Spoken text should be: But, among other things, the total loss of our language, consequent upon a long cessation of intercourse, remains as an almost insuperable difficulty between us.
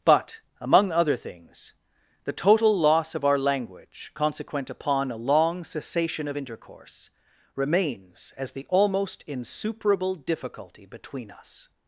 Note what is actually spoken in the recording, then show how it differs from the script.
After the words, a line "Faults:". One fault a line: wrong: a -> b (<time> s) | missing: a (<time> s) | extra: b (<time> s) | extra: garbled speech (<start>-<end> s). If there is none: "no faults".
But, among other things, the total loss of our language, consequent upon a long cessation of intercourse, remains as the almost insuperable difficulty between us.
Faults:
wrong: an -> the (8.5 s)